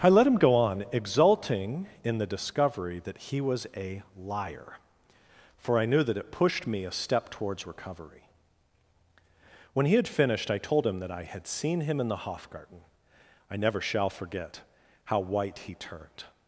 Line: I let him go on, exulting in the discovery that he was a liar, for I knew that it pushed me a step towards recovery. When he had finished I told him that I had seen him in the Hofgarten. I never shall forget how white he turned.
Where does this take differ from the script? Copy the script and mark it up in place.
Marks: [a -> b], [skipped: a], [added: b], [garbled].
I let him go on, exulting in the discovery that he was a liar, for I knew that it pushed me a step towards recovery. When he had finished I told him that I had seen him in the Hofgarten. I never shall forget how white he turned.